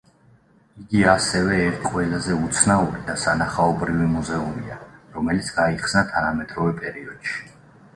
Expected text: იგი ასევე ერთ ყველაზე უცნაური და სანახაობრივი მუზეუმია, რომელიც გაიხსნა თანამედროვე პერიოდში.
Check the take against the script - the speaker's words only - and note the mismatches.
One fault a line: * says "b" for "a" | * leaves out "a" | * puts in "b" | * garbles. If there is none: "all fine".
all fine